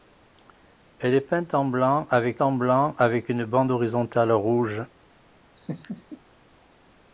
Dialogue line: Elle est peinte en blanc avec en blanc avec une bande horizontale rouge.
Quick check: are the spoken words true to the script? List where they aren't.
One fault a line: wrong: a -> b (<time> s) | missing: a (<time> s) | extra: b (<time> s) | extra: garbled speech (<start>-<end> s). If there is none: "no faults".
no faults